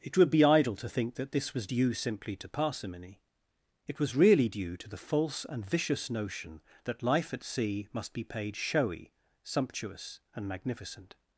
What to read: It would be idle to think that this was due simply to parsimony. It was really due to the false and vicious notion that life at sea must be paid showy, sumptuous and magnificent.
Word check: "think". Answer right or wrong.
right